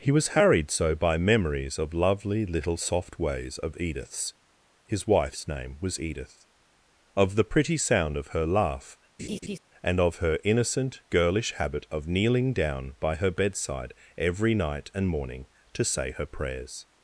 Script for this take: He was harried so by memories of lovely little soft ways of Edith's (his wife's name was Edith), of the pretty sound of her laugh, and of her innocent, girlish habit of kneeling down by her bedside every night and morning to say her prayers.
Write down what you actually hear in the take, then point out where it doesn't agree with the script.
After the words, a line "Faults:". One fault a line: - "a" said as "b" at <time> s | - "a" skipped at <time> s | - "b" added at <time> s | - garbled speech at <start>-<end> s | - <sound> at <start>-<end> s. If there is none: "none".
He was harried so by memories of lovely little soft ways of Edith's (his wife's name was Edith), of the pretty sound of her laugh, and of her innocent, girlish habit of kneeling down by her bedside every night and morning to say her prayers.
Faults:
- laugh at 9.2-9.6 s